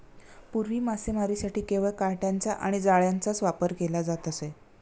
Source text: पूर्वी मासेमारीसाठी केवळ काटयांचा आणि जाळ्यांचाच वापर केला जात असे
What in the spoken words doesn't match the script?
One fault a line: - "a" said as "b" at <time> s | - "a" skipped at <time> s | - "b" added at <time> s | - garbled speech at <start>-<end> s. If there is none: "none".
none